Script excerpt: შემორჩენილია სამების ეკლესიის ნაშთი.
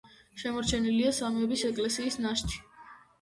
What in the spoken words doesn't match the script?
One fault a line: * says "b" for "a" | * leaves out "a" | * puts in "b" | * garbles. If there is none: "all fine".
all fine